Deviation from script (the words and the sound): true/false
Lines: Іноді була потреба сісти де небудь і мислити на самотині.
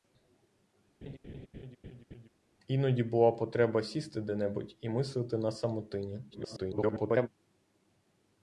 true